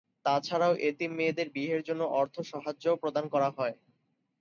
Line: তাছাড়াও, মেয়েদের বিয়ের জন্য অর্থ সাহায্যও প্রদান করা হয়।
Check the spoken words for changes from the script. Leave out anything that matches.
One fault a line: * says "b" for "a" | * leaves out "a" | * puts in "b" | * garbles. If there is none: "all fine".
* puts in "এতিম"